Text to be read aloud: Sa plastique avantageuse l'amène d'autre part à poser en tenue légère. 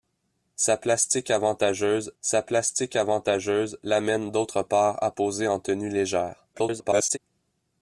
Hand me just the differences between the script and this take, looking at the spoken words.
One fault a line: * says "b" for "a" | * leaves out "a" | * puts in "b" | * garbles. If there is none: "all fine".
* puts in "sa plastique avantageuse"
* garbles